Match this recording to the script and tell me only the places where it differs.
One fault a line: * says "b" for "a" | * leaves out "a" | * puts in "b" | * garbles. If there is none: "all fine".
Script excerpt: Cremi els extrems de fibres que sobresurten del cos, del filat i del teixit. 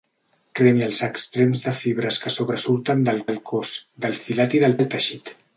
* puts in "del"
* puts in "del"